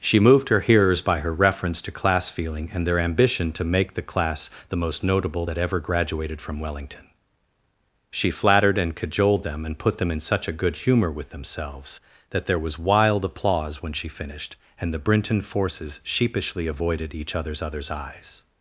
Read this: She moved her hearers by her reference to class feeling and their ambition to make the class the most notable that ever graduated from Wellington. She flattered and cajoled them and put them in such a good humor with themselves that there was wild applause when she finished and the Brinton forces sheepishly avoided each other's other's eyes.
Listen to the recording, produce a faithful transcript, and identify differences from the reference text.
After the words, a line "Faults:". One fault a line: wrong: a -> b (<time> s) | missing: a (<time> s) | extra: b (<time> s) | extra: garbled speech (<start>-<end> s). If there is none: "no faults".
She moved her hearers by her reference to class feeling and their ambition to make the class the most notable that ever graduated from Wellington. She flattered and cajoled them and put them in such a good humor with themselves that there was wild applause when she finished and the Brinton forces sheepishly avoided each other's other's eyes.
Faults:
no faults